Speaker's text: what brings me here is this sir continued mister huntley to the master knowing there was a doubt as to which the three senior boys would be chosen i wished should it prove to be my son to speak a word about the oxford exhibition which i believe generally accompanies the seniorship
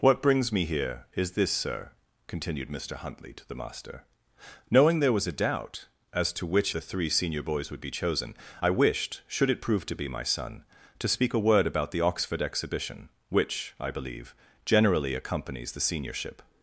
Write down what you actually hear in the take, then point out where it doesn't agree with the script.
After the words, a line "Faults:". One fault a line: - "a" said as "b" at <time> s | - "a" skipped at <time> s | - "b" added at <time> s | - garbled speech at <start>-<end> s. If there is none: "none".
what brings me here is this sir continued mister huntley to the master knowing there was a doubt as to which the three senior boys would be chosen i wished should it prove to be my son to speak a word about the oxford exhibition which i believe generally accompanies the seniorship
Faults:
none